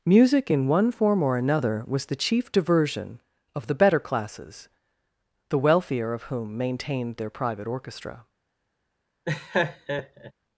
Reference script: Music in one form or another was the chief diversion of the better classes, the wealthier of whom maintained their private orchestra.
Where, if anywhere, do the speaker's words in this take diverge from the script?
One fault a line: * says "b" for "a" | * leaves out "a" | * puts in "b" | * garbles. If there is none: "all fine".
all fine